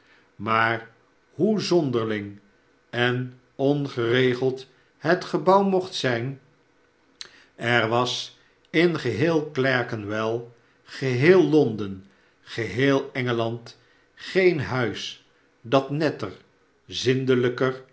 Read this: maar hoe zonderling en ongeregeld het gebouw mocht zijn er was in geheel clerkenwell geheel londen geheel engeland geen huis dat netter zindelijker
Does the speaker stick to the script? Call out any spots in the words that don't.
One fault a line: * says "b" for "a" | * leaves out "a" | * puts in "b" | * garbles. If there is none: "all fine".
all fine